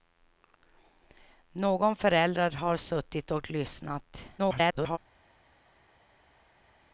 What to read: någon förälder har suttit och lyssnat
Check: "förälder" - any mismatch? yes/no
no